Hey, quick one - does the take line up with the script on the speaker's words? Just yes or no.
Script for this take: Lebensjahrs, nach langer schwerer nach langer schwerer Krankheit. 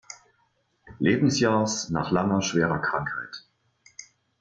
no